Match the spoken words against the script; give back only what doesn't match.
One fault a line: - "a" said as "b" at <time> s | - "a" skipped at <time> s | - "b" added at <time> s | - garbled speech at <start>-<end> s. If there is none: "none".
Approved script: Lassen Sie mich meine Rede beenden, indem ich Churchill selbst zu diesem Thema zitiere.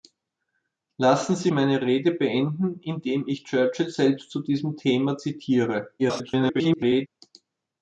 - "mich" skipped at 1.5 s
- garbled speech at 6.0-7.1 s